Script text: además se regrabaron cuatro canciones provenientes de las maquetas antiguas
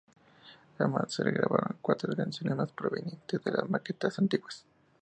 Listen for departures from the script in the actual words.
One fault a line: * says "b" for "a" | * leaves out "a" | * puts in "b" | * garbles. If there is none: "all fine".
* puts in "más"